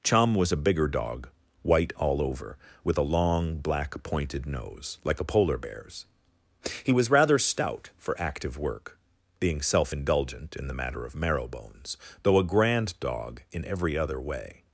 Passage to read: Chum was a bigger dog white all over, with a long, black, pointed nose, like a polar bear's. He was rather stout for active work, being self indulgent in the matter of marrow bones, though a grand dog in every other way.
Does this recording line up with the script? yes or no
yes